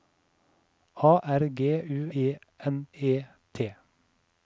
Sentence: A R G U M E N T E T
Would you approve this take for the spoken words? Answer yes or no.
no